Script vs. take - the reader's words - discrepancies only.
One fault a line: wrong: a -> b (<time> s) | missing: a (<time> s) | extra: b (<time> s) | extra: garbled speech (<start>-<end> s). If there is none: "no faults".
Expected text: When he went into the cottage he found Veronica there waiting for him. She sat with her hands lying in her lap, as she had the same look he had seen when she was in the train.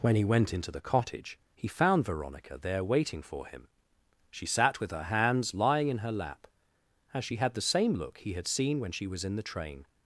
no faults